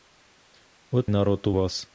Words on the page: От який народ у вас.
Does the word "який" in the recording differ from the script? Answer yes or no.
yes